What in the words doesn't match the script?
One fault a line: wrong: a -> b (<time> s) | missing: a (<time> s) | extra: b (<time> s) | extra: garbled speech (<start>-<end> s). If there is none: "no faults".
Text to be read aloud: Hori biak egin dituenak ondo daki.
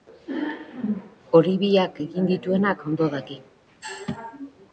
no faults